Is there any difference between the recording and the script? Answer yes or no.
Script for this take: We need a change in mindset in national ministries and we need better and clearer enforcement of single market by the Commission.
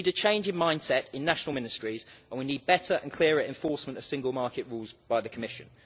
yes